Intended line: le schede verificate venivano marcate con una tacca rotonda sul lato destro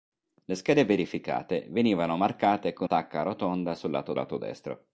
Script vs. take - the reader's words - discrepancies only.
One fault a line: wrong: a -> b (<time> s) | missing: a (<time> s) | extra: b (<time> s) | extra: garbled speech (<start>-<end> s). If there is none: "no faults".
missing: una (2.9 s)
extra: lato (4.1 s)